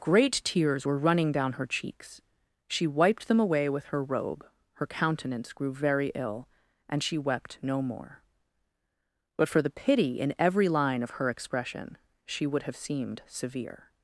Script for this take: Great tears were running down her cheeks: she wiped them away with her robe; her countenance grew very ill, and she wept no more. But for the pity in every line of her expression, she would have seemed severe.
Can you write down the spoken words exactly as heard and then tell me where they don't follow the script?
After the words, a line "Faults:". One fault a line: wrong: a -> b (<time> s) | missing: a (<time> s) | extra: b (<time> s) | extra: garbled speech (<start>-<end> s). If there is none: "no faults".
Great tears were running down her cheeks: she wiped them away with her robe; her countenance grew very ill, and she wept no more. But for the pity in every line of her expression, she would have seemed severe.
Faults:
no faults